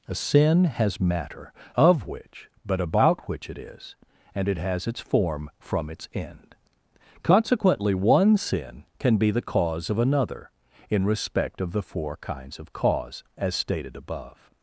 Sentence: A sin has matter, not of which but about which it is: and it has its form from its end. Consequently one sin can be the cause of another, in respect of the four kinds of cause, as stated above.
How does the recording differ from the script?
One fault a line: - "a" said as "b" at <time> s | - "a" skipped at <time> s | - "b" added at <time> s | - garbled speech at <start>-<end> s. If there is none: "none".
- "not" skipped at 1.5 s